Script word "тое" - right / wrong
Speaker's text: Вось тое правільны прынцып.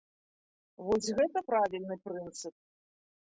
wrong